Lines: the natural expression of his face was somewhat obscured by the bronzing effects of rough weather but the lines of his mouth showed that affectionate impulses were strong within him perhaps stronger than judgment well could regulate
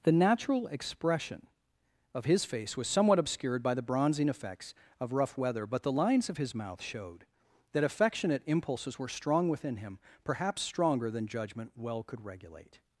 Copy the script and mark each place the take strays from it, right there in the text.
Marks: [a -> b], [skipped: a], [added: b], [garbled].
the natural expression of his face was somewhat obscured by the bronzing effects of rough weather but the lines of his mouth showed that affectionate impulses were strong within him perhaps stronger than judgment well could regulate